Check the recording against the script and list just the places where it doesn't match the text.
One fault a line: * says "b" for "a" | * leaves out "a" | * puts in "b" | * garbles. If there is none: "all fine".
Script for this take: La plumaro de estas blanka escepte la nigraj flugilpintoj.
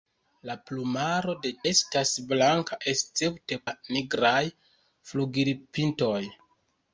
all fine